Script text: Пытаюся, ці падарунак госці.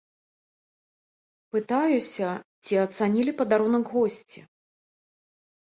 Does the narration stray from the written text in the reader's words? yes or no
yes